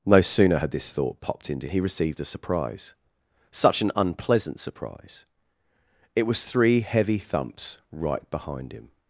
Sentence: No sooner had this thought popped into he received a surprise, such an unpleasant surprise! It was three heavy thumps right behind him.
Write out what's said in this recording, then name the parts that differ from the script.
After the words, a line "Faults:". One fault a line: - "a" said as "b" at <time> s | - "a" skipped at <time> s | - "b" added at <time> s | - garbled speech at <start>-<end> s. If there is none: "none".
No sooner had this thought popped into he received a surprise, such an unpleasant surprise! It was three heavy thumps right behind him.
Faults:
none